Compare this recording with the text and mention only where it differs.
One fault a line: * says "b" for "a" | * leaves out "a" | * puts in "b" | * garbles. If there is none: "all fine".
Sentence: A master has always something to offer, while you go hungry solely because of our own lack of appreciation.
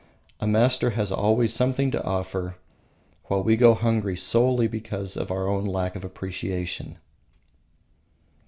* says "we" for "you"